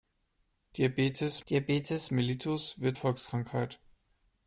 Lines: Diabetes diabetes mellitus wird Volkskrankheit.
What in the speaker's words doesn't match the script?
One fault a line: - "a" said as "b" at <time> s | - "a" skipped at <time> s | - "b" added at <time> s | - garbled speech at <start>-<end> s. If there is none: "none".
none